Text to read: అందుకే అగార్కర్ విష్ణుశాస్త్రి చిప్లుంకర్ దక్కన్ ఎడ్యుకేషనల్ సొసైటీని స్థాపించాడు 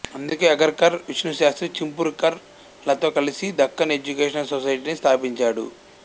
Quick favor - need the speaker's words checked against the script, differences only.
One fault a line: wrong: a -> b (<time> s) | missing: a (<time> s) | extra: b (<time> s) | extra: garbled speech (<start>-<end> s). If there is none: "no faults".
extra: లతో కలిసి (2.8 s)